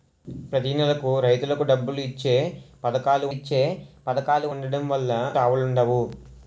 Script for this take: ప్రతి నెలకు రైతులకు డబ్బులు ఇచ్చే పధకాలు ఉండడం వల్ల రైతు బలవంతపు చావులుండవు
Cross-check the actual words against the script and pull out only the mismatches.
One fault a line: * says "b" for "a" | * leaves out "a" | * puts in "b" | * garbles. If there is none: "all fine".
* puts in "ఇచ్చే పధకాలు"
* leaves out "రైతు బలవంతపు"